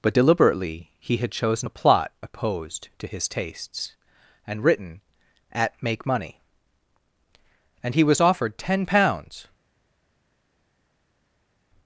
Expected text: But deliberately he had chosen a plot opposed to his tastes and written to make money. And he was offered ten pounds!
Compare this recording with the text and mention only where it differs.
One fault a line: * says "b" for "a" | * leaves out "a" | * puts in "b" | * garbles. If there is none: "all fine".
* says "at" for "to"